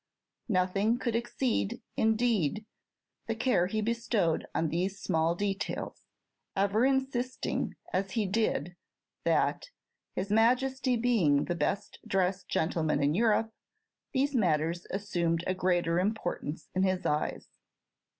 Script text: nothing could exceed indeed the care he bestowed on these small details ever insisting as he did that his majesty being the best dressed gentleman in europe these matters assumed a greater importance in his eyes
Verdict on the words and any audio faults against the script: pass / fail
pass